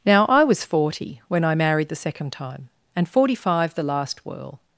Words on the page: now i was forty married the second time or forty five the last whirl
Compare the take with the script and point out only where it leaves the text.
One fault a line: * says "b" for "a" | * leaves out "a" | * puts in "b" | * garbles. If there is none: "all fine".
* puts in "when i"
* says "and" for "or"